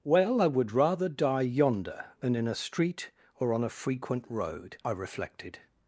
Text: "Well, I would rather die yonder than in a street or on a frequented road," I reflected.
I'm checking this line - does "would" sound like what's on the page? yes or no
yes